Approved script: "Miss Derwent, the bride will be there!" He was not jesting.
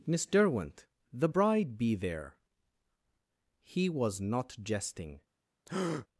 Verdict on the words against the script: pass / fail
fail